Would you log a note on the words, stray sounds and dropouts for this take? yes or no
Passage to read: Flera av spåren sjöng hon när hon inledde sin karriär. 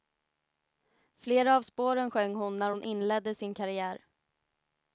no